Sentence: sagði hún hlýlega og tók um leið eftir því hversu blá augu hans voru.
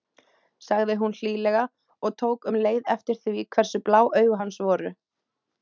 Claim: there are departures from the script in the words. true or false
false